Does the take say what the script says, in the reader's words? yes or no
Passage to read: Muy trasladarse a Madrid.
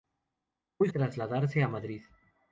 yes